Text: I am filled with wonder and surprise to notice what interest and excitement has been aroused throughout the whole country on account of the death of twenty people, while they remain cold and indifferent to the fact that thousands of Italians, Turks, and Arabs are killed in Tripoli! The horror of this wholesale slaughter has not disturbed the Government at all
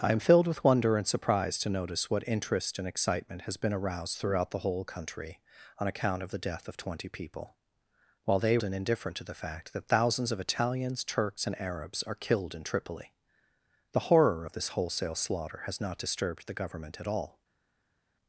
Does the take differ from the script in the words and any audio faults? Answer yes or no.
yes